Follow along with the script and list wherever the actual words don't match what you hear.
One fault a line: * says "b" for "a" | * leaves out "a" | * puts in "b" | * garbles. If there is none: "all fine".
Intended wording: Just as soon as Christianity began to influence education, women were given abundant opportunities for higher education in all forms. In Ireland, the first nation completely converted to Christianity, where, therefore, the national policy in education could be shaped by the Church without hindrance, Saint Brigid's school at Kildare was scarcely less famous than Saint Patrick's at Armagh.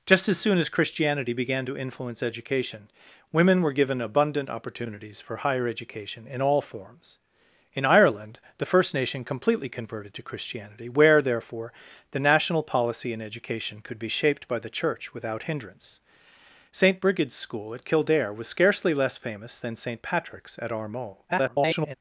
* garbles